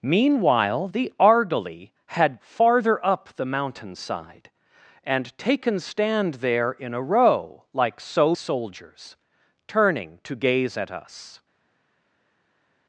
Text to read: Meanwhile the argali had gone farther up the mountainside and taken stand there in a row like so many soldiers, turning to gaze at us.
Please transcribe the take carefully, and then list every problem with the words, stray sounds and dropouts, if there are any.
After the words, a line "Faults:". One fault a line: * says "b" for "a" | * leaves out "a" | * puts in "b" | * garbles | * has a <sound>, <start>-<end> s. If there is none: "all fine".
Meanwhile the argali had farther up the mountainside and taken stand there in a row like so soldiers, turning to gaze at us.
Faults:
* leaves out "gone"
* leaves out "many"